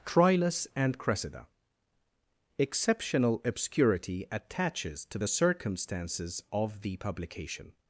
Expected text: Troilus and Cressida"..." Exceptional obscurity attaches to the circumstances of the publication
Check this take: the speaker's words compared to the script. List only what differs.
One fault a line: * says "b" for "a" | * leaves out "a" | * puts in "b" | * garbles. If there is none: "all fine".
all fine